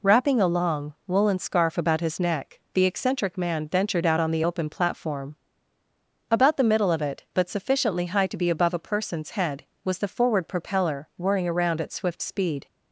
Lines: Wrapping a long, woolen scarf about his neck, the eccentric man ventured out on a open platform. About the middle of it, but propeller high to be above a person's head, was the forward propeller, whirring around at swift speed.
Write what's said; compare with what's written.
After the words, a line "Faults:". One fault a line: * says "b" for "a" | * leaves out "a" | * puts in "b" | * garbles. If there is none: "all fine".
Wrapping a long, woolen scarf about his neck, the eccentric man ventured out on the open platform. About the middle of it, but sufficiently high to be above a person's head, was the forward propeller, whirring around at swift speed.
Faults:
* says "the" for "a"
* says "sufficiently" for "propeller"